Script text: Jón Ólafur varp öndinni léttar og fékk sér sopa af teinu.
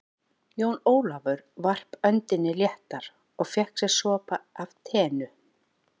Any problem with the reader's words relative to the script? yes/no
no